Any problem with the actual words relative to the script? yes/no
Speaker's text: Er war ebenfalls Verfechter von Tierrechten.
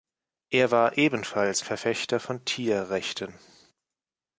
no